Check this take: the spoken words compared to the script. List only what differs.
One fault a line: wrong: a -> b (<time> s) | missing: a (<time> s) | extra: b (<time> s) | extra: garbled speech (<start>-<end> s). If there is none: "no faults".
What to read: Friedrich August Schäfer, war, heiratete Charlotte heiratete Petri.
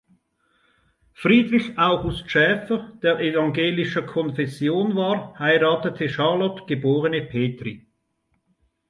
extra: der evangelischer Konfession (3.0 s)
wrong: heiratete -> geborene (6.7 s)